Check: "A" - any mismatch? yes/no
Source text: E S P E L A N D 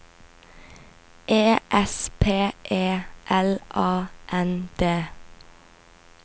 no